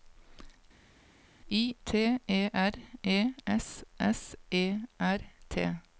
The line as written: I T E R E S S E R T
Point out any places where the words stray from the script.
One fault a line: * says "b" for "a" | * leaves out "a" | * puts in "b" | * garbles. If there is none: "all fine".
all fine